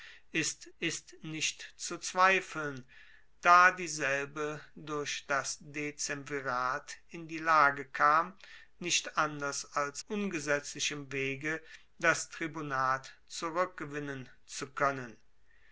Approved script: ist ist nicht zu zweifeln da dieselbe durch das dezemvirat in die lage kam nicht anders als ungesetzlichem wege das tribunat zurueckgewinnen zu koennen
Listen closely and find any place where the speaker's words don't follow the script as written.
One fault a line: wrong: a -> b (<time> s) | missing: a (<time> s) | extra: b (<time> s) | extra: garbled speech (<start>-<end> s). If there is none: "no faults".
no faults